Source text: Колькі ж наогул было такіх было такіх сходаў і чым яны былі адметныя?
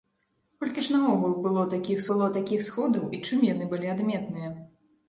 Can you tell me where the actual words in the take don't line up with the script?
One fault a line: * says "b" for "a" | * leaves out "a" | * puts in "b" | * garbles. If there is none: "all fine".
all fine